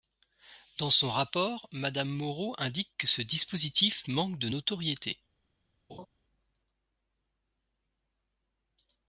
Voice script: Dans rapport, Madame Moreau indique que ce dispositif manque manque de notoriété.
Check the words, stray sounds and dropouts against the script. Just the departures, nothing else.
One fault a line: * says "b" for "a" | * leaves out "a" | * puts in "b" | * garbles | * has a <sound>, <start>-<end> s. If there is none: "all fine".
* puts in "son"
* leaves out "manque"
* has a laugh, 5.9-6.1 s